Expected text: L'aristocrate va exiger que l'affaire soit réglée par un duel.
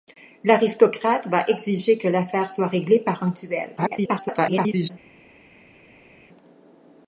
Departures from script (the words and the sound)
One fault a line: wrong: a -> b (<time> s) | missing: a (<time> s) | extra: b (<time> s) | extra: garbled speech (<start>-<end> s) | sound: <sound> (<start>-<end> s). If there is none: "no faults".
extra: garbled speech (3.8-4.9 s)